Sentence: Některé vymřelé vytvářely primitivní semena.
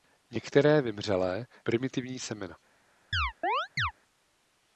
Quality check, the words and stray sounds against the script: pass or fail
fail